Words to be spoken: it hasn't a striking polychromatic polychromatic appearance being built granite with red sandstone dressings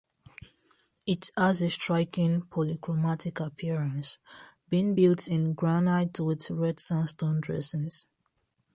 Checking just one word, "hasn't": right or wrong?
wrong